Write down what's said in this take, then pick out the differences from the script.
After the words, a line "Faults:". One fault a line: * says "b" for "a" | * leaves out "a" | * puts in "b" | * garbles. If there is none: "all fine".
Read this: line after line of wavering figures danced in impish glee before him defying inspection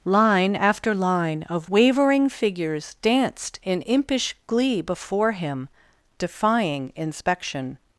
line after line of wavering figures danced in impish glee before him defying inspection
Faults:
all fine